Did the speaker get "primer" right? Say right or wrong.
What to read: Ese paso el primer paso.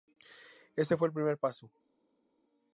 right